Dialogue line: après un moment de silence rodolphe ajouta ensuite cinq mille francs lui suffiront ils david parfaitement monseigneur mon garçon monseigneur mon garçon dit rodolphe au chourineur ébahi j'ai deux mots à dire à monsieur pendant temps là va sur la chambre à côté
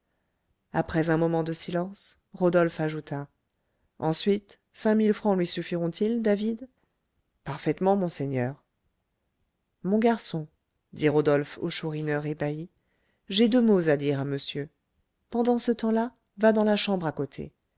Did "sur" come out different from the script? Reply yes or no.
yes